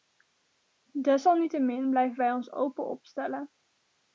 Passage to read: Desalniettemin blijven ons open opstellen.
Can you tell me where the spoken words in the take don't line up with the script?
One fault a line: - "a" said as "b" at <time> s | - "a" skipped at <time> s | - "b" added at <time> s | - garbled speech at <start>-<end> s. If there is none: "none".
- "wij" added at 2.2 s